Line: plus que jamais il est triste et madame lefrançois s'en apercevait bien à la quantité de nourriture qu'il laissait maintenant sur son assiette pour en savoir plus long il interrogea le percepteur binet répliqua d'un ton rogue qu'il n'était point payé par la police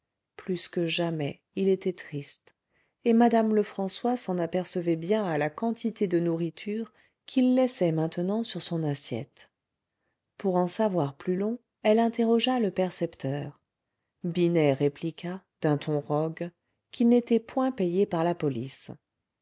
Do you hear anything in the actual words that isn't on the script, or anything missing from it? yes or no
yes